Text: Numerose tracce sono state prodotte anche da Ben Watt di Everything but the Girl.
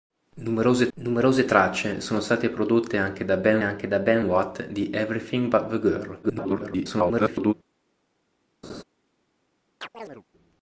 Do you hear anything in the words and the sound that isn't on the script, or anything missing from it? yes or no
yes